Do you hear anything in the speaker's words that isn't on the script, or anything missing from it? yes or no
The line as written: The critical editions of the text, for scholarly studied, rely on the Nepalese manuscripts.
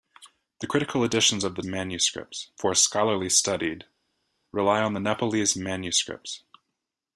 yes